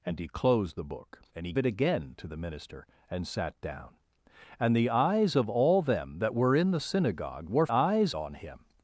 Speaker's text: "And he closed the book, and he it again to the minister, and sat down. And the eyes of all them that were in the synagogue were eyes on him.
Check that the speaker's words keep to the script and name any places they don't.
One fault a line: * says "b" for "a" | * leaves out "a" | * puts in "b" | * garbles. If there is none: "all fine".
all fine